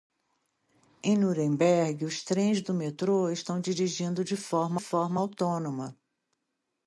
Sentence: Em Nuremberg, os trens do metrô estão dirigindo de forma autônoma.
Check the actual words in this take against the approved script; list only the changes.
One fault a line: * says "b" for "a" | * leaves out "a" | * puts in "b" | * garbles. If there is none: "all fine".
* puts in "forma"